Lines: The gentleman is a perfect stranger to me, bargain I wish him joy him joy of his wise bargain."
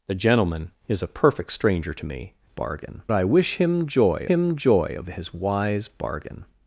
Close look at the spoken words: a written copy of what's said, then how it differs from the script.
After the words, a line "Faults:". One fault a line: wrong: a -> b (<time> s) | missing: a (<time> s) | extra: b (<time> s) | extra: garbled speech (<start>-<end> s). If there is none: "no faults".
The gentleman is a perfect stranger to me, bargain I wish him joy him joy of his wise bargain."
Faults:
no faults